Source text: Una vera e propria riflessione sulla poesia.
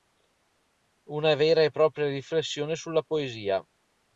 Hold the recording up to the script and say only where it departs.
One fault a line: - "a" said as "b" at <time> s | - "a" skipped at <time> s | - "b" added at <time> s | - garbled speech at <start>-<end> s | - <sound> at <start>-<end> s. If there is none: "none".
none